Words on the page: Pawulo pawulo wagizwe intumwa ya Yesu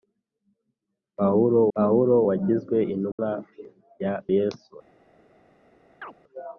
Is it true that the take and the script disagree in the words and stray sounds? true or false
true